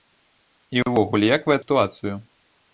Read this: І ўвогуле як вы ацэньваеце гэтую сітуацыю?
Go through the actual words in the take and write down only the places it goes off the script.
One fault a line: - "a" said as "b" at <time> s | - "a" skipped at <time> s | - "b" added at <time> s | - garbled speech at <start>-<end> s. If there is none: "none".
- "ацэньваеце гэтую" skipped at 1.6 s